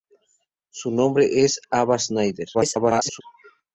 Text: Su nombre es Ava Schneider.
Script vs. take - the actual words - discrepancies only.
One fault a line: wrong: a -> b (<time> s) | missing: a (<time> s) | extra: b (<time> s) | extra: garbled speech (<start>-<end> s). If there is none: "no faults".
extra: garbled speech (2.5-3.2 s)